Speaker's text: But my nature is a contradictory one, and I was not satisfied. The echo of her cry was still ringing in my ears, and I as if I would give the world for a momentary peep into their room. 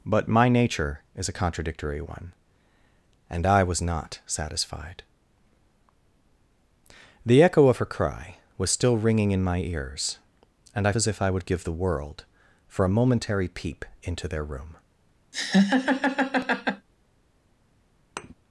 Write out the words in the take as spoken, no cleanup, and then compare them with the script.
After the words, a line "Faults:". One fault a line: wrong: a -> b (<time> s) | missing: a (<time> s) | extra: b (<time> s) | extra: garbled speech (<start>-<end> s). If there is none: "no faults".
But my nature is a contradictory one, and I was not satisfied. The echo of her cry was still ringing in my ears, and I as if I would give the world for a momentary peep into their room.
Faults:
no faults